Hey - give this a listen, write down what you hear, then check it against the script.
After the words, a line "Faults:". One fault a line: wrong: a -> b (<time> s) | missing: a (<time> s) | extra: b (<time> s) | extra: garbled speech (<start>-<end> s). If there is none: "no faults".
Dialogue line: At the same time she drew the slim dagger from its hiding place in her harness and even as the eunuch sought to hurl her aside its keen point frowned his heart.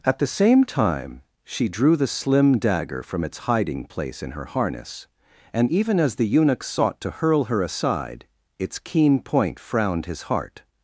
At the same time she drew the slim dagger from its hiding place in her harness and even as the eunuch sought to hurl her aside its keen point frowned his heart.
Faults:
no faults